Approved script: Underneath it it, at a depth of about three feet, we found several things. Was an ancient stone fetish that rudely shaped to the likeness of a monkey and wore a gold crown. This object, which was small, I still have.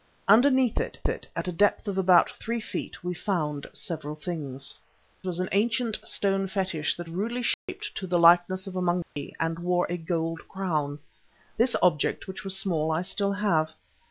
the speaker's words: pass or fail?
pass